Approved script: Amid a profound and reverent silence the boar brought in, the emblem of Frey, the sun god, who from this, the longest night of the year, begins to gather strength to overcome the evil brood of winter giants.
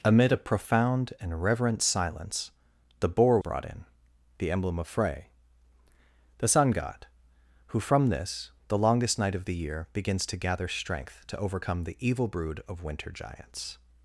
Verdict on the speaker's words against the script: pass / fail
pass